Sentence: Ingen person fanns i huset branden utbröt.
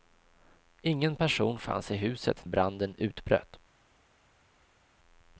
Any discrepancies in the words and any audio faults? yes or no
no